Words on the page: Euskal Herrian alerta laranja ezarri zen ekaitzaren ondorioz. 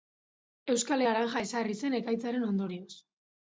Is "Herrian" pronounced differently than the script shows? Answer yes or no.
yes